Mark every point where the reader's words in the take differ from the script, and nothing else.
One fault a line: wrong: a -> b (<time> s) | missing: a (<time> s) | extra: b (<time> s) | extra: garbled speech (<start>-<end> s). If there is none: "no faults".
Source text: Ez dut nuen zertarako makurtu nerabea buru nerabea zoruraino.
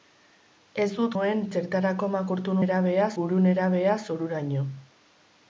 no faults